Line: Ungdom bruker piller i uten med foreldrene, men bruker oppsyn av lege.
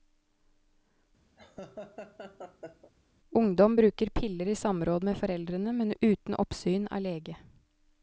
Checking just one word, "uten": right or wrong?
wrong